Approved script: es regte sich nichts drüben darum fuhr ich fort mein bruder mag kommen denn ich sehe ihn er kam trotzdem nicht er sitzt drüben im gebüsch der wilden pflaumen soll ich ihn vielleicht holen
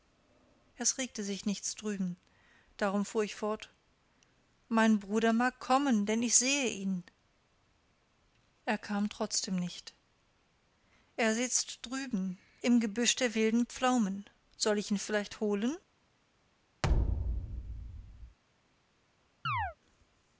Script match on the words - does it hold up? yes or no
yes